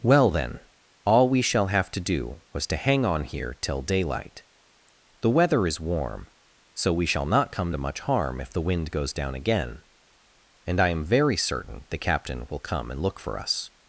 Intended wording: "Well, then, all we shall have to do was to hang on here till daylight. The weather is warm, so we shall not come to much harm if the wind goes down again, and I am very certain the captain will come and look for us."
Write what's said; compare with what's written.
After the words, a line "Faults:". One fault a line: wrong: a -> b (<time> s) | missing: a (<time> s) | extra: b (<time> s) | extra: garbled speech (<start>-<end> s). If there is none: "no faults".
"Well, then, all we shall have to do was to hang on here till daylight. The weather is warm, so we shall not come to much harm if the wind goes down again, and I am very certain the captain will come and look for us."
Faults:
no faults